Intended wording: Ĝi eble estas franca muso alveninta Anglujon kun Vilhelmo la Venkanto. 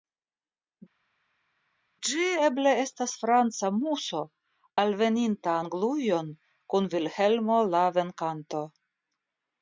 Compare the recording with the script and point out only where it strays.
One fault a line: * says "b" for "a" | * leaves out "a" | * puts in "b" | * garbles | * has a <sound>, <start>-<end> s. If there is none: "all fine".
all fine